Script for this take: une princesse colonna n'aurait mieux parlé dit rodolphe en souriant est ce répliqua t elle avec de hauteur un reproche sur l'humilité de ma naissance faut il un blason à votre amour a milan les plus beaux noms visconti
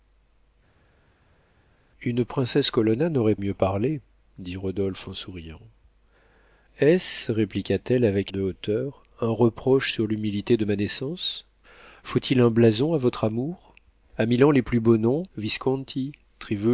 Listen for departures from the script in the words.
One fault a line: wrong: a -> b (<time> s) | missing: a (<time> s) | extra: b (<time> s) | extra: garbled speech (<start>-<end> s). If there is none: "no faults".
no faults